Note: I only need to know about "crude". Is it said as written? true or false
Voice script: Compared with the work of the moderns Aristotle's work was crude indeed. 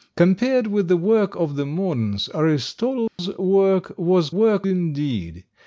false